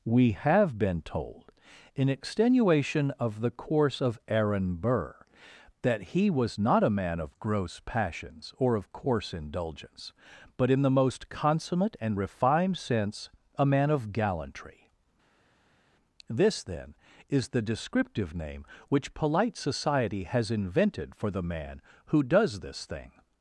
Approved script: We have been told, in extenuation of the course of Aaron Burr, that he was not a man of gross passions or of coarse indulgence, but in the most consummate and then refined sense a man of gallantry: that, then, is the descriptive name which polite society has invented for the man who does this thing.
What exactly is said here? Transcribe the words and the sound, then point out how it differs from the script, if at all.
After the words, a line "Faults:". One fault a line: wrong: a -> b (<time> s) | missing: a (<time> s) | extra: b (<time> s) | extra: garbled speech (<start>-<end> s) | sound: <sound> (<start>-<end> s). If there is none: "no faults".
We have been told, in extenuation of the course of Aaron Burr, that he was not a man of gross passions or of coarse indulgence, but in the most consummate and refined sense a man of gallantry: this, then, is the descriptive name which polite society has invented for the man who does this thing.
Faults:
missing: then (12.2 s)
wrong: that -> this (16.3 s)